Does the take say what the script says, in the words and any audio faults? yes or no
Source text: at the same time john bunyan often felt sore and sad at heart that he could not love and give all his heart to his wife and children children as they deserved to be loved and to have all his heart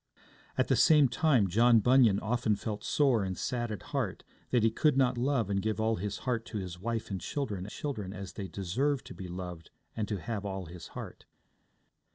yes